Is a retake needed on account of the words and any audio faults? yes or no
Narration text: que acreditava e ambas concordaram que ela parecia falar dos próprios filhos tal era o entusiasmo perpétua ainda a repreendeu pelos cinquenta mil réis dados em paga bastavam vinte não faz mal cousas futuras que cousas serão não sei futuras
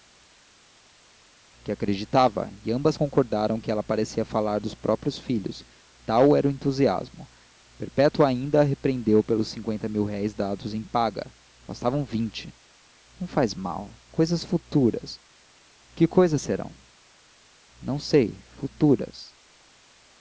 no